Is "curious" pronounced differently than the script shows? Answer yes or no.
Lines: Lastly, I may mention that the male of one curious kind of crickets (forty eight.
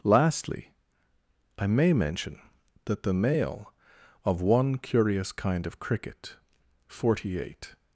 no